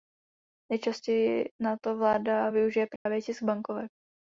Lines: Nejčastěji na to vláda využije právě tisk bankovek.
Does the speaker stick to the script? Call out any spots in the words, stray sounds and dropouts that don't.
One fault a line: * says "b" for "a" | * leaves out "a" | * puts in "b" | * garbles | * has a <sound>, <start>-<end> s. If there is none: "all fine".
* has a dropout, 3.0-3.1 s